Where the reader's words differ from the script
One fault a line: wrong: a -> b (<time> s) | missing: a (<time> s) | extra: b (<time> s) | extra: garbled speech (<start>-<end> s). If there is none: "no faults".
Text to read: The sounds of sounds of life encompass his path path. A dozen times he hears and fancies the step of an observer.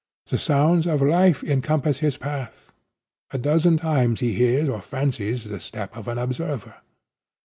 missing: sounds of (1.0 s)
missing: path (2.7 s)
wrong: and -> or (4.7 s)